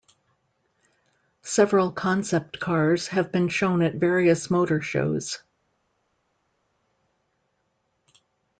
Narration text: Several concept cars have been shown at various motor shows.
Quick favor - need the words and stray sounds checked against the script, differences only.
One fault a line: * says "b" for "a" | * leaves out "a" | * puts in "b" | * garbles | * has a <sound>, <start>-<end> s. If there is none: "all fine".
all fine